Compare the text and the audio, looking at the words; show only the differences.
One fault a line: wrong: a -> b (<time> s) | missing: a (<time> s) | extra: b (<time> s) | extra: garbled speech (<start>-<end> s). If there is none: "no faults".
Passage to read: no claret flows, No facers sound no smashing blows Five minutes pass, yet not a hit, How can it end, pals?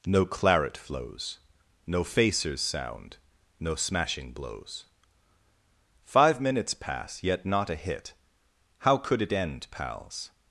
wrong: can -> could (9.0 s)